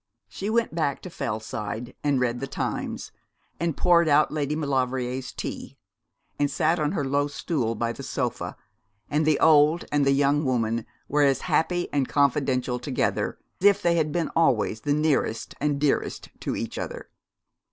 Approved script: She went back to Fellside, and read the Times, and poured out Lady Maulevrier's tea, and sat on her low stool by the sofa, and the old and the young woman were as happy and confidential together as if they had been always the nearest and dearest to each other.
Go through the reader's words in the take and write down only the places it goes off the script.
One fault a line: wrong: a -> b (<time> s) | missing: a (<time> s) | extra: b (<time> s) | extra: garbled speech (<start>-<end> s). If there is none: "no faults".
missing: as (13.4 s)